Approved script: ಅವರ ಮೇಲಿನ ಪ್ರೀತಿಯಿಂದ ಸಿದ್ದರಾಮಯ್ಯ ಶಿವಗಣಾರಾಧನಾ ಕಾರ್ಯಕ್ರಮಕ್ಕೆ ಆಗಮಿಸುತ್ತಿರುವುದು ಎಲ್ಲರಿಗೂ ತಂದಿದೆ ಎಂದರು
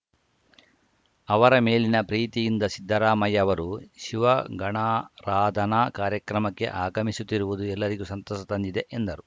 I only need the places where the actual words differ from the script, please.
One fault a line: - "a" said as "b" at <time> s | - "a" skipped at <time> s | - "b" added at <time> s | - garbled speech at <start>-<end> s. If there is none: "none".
- "ಅವರು" added at 3.4 s
- "ಸಂತಸ" added at 8.1 s